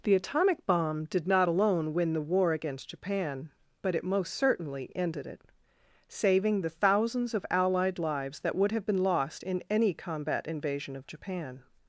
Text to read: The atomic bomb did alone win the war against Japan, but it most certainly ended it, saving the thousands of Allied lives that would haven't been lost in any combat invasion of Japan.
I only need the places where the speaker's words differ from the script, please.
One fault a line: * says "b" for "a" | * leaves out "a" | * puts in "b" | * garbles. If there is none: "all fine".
* puts in "not"
* says "have" for "haven't"